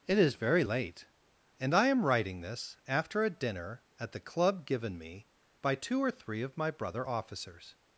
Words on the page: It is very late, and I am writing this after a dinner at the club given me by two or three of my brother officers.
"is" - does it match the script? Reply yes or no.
yes